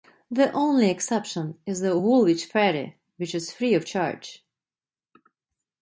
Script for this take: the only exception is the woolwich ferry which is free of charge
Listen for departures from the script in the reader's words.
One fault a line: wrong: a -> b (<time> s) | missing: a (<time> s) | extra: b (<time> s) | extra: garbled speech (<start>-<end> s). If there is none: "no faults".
no faults